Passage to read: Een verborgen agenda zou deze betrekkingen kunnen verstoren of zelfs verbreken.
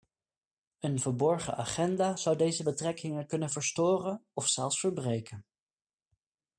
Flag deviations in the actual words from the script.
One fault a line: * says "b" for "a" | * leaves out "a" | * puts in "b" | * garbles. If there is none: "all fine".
all fine